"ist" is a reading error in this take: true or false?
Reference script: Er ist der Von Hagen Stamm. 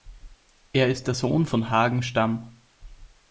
false